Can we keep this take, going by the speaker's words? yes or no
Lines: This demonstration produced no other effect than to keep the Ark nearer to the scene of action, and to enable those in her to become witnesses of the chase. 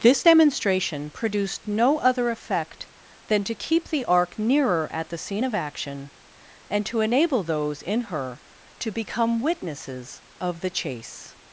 no